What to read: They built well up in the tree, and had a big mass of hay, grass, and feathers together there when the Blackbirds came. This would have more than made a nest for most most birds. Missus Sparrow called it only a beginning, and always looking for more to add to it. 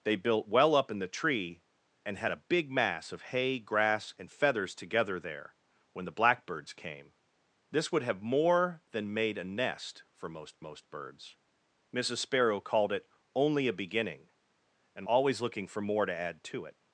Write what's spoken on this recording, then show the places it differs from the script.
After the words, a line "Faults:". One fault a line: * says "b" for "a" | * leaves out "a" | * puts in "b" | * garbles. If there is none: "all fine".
They built well up in the tree, and had a big mass of hay, grass, and feathers together there when the Blackbirds came. This would have more than made a nest for most most birds. Missus Sparrow called it only a beginning, and always looking for more to add to it.
Faults:
all fine